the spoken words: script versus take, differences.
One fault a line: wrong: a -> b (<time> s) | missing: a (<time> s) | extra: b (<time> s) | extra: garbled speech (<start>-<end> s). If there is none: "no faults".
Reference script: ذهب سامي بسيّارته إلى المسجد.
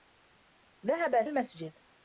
missing: سامي بسيّارته إلى (1.2 s)